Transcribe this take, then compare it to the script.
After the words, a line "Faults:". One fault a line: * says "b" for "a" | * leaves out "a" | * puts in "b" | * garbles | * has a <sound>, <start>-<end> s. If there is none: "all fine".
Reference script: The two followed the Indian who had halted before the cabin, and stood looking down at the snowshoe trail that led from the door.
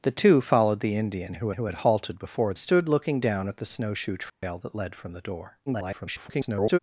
The two followed the Indian who who had halted before stood looking down at the snowshoe trail that led from the door. [garbled]
Faults:
* puts in "who"
* leaves out "the cabin and"
* has a dropout, 4.3-4.4 s
* garbles